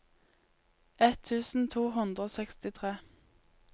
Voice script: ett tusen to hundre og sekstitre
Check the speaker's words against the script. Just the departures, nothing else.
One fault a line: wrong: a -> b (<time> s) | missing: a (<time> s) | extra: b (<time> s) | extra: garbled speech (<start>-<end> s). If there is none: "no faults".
no faults